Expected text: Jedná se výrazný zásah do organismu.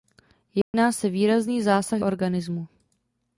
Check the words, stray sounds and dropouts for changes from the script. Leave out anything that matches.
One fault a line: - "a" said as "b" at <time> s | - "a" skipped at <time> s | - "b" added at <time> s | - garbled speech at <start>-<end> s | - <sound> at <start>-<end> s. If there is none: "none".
- dropout at 0.6-0.7 s
- "do" skipped at 2.0 s